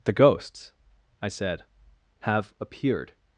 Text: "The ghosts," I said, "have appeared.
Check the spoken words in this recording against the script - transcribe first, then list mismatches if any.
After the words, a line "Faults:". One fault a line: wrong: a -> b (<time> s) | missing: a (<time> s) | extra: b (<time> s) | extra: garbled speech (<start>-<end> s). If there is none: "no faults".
"The ghosts," I said, "have appeared.
Faults:
no faults